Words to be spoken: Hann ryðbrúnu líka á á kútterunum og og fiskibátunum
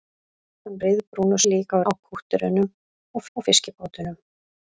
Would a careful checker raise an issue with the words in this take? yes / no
no